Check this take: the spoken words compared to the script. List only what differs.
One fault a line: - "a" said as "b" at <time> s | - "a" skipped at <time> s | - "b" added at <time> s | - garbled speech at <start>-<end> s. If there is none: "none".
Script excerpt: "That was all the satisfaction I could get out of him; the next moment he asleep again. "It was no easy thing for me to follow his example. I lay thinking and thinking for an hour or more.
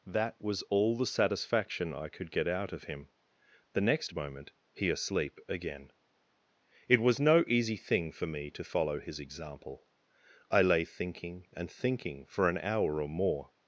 none